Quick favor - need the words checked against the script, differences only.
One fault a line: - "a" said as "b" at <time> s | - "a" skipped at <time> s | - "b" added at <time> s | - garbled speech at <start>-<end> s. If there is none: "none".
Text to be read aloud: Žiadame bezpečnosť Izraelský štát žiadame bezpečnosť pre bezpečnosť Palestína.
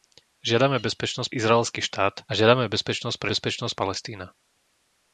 none